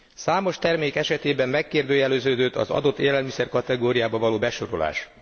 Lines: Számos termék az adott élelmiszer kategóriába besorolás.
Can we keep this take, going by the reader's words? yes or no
no